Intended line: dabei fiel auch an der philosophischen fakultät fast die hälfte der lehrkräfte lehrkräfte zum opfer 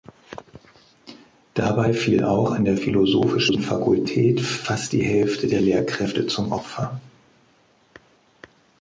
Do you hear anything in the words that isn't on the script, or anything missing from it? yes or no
yes